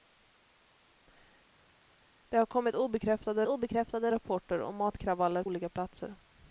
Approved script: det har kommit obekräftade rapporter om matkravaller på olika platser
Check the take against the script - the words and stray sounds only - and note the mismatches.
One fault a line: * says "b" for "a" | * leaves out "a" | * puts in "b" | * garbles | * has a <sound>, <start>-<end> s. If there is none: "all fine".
* puts in "obekräftade"
* leaves out "på"